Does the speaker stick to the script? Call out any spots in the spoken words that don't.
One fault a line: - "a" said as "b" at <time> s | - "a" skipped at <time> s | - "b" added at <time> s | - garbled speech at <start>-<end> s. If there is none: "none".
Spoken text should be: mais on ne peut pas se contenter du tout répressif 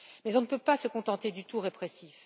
none